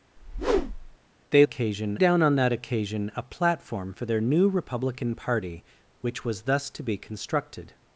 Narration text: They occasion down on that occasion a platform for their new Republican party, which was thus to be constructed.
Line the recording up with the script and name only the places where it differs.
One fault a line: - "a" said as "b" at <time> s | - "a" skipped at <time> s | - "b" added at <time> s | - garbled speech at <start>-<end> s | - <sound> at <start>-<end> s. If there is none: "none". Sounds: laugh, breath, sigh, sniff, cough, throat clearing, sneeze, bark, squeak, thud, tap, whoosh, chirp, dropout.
- whoosh at 0.2-1.0 s